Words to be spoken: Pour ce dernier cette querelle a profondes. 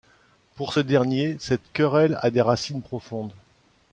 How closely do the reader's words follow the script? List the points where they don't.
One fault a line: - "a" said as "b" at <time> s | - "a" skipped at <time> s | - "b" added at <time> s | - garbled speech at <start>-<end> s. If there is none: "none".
- "des racines" added at 2.3 s